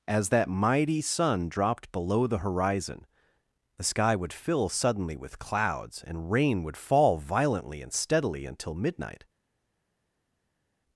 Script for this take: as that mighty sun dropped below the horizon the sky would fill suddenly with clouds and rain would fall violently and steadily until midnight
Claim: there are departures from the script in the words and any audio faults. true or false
false